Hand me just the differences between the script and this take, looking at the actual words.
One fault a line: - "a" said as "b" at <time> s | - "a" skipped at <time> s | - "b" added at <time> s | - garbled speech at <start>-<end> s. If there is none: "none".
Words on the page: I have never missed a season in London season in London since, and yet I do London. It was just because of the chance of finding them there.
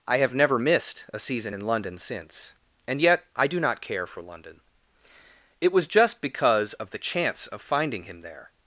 - "season in London" skipped at 2.0 s
- "not care for" added at 3.6 s
- "them" said as "him" at 8.0 s